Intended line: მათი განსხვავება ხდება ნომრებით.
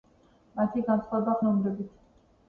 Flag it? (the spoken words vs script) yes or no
yes